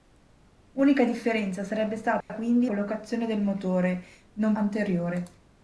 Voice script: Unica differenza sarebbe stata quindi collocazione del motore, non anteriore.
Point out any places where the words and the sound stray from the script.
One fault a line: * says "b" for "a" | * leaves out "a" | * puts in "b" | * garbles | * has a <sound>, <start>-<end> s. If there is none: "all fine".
* has a dropout, 2.2-2.3 s